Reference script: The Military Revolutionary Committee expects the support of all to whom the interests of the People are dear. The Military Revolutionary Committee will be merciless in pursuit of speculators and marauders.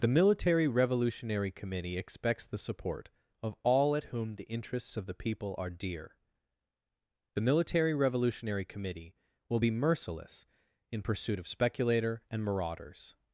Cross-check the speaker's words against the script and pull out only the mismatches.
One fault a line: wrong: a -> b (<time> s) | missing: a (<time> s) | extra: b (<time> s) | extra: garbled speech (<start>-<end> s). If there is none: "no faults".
wrong: to -> at (4.0 s)
wrong: speculators -> speculator (11.5 s)